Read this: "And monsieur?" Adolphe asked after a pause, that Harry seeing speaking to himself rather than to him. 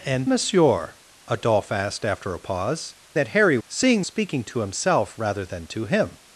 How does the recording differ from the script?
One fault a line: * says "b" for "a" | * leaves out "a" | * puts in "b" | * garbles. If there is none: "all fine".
all fine